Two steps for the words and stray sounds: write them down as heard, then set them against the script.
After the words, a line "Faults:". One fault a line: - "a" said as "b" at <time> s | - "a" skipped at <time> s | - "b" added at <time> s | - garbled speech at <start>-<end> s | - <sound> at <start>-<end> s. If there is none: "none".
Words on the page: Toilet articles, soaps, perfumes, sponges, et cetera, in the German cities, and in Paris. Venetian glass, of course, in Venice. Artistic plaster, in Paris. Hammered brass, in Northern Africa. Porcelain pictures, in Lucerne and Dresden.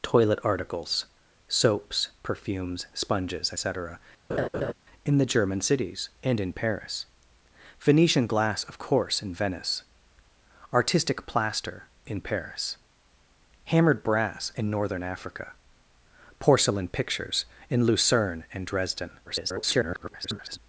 Toilet articles, soaps, perfumes, sponges, cetera, in the German cities, and in Paris. Venetian glass, of course, in Venice. Artistic plaster, in Paris. Hammered brass, in Northern Africa. Porcelain pictures, in Lucerne and Dresden. [garbled]
Faults:
- "et" skipped at 3.5 s
- laugh at 4.3-4.7 s
- garbled speech at 19.3-20.6 s